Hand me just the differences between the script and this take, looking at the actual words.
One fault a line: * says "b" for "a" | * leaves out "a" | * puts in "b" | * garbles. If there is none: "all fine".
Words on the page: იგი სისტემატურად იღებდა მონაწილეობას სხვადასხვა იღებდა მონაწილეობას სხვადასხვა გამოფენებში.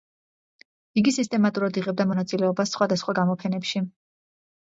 * leaves out "იღებდა მონაწილეობას სხვადასხვა"